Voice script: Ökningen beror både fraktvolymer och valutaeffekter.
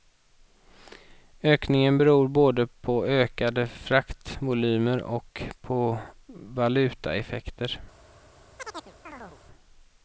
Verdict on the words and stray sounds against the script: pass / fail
fail